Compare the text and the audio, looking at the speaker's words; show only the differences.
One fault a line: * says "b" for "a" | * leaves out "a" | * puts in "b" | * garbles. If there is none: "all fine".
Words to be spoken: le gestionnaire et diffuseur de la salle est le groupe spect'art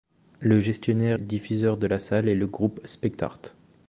* leaves out "et"